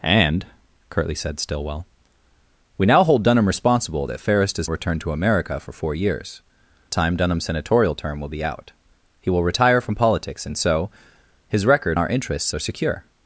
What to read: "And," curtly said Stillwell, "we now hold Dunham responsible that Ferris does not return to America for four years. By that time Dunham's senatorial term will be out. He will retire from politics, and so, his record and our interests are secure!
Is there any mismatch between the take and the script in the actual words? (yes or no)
yes